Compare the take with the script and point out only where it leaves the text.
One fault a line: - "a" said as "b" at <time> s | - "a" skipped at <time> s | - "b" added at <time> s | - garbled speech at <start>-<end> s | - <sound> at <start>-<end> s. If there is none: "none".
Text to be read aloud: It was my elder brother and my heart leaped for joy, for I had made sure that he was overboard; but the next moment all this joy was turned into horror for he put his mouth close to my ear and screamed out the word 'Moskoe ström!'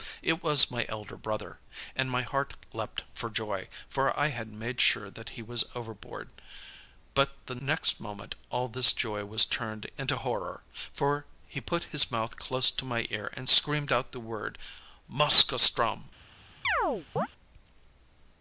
- chirp at 16.6-17.3 s